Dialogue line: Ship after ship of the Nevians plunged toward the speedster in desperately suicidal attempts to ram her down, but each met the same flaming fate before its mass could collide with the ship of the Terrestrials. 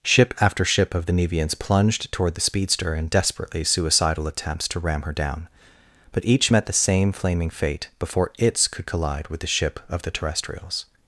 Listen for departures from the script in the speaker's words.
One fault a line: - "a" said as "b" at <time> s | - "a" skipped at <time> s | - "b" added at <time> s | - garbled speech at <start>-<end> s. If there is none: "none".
- "mass" skipped at 8.7 s